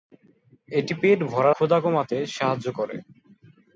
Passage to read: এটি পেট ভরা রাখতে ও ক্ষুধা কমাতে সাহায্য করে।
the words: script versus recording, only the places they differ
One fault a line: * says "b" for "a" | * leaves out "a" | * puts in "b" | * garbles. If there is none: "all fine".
* leaves out "রাখতে ও"